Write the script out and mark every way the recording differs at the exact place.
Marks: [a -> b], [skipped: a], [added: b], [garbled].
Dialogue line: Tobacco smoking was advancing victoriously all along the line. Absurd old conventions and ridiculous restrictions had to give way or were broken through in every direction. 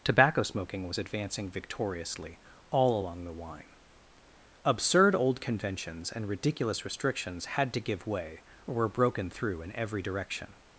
Tobacco smoking was advancing victoriously all along the [line. -> wine] Absurd old conventions and ridiculous restrictions had to give way or were broken through in every direction.